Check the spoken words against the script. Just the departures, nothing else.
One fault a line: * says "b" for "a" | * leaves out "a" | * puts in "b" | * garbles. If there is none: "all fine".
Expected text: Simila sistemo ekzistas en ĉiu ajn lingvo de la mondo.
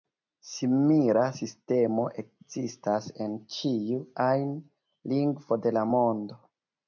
all fine